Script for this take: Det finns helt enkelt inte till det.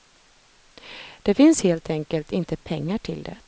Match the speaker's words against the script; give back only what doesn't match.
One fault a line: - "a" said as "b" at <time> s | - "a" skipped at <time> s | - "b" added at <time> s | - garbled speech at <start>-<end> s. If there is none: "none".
- "pengar" added at 2.6 s